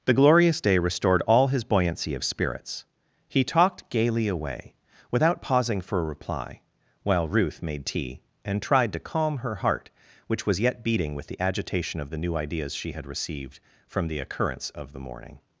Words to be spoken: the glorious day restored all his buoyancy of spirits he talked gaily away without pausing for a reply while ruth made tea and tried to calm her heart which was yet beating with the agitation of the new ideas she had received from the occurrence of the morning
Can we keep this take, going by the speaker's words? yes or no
yes